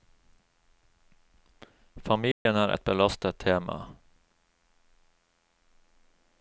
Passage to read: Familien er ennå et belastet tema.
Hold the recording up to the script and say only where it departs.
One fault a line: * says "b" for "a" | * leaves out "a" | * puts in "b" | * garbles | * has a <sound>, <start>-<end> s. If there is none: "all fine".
* has a dropout, 2.3-2.5 s
* leaves out "ennå"